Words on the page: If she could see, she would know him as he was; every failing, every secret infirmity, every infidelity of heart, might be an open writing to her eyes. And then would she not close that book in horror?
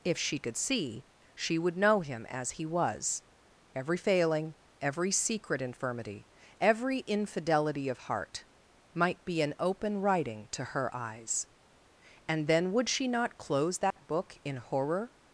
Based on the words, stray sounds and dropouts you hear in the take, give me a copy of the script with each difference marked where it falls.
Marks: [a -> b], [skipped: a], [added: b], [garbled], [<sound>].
If she could see, she would know him as he was; every failing, every secret infirmity, every infidelity of heart, might be an open writing to her eyes. And then would she not close that [dropout] book in horror?